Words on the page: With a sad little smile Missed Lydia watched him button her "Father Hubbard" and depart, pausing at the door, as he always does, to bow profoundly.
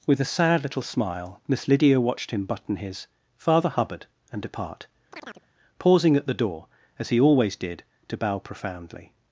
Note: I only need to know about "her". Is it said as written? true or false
false